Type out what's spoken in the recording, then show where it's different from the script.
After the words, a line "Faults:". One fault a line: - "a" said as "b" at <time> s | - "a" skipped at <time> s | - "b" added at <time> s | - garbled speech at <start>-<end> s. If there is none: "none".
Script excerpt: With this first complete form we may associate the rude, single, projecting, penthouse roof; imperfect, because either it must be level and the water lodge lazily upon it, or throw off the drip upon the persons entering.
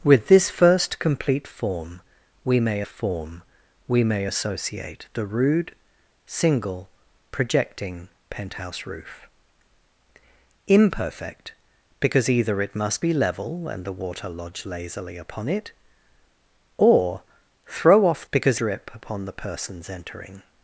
With this first complete form we may form we may associate the rude, single, projecting, penthouse roof; imperfect, because either it must be level and the water lodge lazily upon it, or throw off because drip upon the persons entering.
Faults:
- "form we may" added at 2.8 s
- "the" said as "because" at 18.3 s